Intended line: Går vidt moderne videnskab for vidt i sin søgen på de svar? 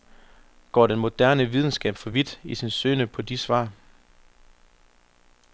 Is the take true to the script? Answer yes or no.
no